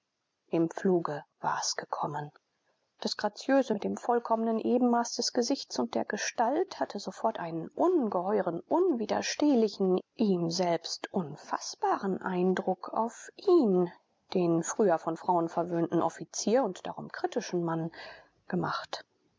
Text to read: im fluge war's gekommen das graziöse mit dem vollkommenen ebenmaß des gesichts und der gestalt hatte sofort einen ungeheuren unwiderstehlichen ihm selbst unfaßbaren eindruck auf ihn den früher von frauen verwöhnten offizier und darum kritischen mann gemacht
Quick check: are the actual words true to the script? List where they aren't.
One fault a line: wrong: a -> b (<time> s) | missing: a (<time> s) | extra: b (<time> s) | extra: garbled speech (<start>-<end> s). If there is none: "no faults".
no faults